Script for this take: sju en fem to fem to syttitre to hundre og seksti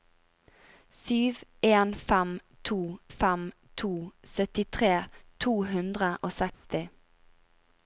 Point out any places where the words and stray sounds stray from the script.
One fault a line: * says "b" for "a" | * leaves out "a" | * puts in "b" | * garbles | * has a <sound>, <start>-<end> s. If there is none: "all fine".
* has a dropout, 6.5-6.6 s